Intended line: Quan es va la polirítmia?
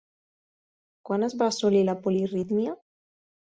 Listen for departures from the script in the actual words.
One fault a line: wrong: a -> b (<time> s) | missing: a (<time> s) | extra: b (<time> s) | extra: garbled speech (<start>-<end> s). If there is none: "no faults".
extra: assolir (1.5 s)